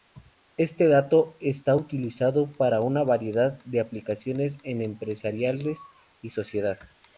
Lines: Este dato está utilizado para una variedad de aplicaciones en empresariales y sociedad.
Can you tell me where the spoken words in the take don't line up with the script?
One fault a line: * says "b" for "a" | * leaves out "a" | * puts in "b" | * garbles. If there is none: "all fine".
all fine